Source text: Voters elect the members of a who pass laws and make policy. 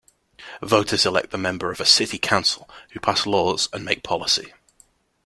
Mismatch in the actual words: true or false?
true